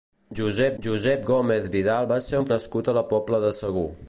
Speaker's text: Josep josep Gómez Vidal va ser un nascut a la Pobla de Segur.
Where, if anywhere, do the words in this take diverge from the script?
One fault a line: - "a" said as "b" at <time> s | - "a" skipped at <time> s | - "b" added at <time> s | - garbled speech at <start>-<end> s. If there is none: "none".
none